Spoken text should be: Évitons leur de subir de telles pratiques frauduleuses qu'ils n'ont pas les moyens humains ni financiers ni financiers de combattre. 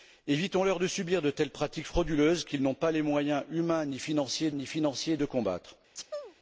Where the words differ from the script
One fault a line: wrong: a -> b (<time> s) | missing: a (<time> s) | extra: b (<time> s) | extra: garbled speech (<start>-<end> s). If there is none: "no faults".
no faults